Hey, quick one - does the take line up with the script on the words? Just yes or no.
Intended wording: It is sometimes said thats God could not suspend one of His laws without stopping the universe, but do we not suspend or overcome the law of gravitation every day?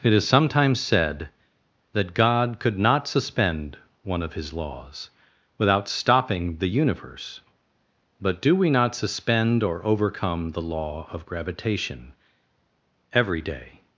no